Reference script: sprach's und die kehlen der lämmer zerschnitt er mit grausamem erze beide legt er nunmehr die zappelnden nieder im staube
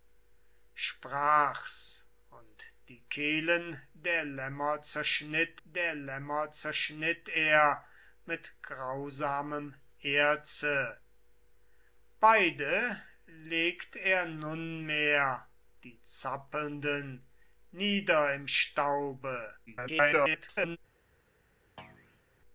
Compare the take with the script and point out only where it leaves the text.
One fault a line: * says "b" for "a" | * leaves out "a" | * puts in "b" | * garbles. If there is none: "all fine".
* puts in "der lämmer zerschnitt"
* garbles